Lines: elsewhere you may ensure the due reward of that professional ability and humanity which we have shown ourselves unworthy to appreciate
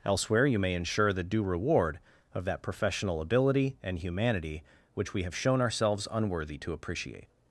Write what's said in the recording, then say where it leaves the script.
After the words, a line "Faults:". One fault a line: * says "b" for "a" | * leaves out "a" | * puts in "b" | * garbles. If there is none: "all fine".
elsewhere you may ensure the due reward of that professional ability and humanity which we have shown ourselves unworthy to appreciate
Faults:
all fine